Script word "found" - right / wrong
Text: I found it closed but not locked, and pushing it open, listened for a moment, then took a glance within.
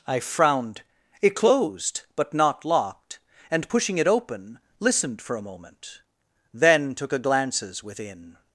wrong